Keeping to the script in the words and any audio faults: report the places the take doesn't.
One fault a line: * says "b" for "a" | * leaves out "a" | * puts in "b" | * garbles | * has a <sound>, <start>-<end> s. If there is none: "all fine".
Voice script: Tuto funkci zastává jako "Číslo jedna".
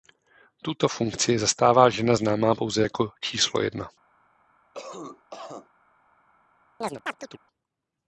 * puts in "žena známá pouze"
* has a cough, 4.7-5.7 s
* has a chirp, 6.8-7.4 s